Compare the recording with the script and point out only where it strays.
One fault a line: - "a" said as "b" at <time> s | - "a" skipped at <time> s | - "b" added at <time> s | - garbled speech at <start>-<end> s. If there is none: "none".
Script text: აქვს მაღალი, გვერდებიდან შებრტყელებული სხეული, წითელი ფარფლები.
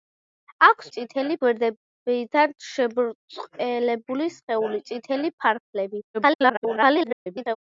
- "მაღალი" said as "წითელი" at 0.9 s
- garbled speech at 6.1-7.6 s